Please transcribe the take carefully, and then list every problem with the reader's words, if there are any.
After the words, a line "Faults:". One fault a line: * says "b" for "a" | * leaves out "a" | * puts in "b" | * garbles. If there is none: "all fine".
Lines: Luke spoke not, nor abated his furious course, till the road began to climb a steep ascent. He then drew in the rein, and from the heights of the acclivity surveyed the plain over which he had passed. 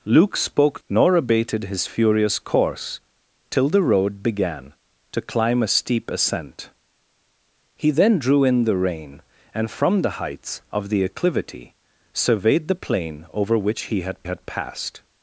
Luke spoke nor abated his furious course, till the road began to climb a steep ascent. He then drew in the rein, and from the heights of the acclivity surveyed the plain over which he had had passed.
Faults:
* leaves out "not"
* puts in "had"